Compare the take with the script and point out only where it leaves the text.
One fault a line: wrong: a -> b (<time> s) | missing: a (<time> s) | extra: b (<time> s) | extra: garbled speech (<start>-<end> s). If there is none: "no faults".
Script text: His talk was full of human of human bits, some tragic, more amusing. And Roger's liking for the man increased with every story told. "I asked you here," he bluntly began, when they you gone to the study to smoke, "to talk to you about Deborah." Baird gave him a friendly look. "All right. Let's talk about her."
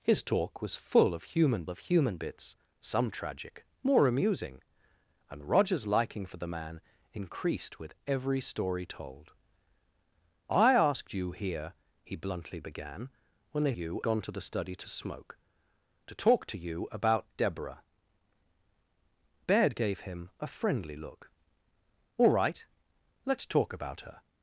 no faults